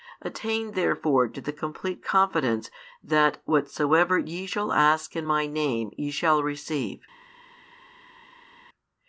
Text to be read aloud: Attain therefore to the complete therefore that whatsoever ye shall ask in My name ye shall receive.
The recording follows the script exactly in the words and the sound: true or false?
false